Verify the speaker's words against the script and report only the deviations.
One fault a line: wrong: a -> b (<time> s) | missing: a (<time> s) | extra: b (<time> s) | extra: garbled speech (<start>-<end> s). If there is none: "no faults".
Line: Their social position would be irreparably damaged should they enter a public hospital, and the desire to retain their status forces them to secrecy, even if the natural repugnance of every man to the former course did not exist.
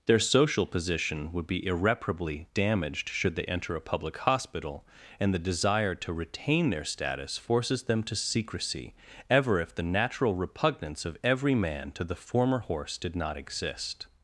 wrong: even -> ever (9.3 s)
wrong: course -> horse (12.6 s)